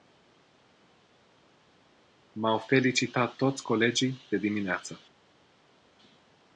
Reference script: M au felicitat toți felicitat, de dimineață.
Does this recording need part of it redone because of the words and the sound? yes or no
yes